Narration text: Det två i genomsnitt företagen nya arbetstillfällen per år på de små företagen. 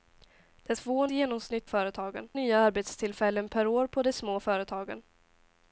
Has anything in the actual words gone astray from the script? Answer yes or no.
no